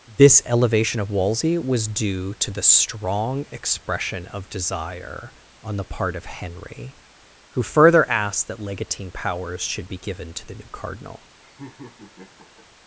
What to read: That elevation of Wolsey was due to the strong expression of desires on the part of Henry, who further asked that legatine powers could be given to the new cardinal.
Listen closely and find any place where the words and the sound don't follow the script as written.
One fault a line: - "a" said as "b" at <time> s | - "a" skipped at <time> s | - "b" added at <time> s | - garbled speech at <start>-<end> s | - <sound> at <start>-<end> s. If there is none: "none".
- "That" said as "This" at 0.1 s
- "desires" said as "desire" at 4.5 s
- "could" said as "should" at 9.6 s
- laugh at 11.4-12.7 s